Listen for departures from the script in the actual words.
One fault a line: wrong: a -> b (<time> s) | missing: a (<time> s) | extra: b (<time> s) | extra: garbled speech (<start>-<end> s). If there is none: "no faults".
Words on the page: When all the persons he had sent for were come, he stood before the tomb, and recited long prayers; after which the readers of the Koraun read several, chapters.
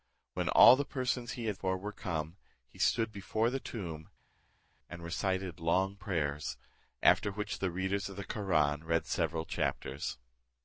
missing: sent (1.6 s)